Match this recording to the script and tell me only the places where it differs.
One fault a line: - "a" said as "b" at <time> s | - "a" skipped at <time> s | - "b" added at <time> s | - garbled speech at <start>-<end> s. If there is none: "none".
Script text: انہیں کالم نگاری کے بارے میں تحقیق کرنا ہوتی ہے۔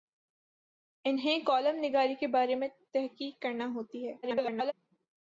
- garbled speech at 4.2-4.7 s